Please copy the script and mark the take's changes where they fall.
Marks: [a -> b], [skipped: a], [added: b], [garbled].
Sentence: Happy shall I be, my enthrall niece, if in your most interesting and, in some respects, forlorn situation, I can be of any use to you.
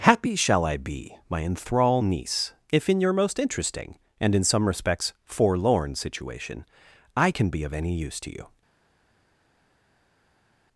Happy shall I be, my enthrall niece, if in your most interesting and, in some respects, forlorn situation, I can be of any use to you.